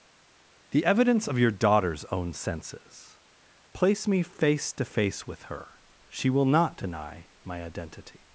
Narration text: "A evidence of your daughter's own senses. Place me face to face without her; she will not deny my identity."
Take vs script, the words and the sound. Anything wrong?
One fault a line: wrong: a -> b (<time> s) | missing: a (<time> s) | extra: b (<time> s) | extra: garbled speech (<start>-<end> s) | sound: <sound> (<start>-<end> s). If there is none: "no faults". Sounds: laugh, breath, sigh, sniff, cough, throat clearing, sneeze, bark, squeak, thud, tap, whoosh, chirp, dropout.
wrong: A -> The (0.7 s)
wrong: without -> with (5.3 s)